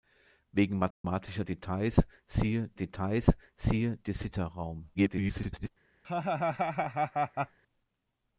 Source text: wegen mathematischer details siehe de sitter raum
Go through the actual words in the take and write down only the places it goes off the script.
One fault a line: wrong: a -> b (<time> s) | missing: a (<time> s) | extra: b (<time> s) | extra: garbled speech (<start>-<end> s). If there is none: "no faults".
extra: details siehe (2.7 s)
extra: garbled speech (4.9-5.7 s)